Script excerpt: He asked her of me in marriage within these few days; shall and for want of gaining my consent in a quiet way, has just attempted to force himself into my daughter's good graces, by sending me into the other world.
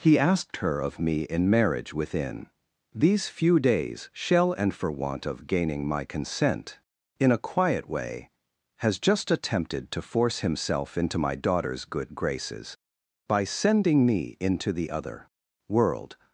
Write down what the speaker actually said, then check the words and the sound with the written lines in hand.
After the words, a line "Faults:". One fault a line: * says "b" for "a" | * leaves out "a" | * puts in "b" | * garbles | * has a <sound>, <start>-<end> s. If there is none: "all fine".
He asked her of me in marriage within these few days; shall and for want of gaining my consent in a quiet way, has just attempted to force himself into my daughter's good graces, by sending me into the other world.
Faults:
all fine